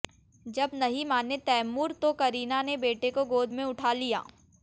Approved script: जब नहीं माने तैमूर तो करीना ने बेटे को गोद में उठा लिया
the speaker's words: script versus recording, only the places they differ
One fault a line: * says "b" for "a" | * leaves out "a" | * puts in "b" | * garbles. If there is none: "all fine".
all fine